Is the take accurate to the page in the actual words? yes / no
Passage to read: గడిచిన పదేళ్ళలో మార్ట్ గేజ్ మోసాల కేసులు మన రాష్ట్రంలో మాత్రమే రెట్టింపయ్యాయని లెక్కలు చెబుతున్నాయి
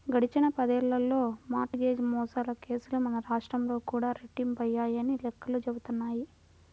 no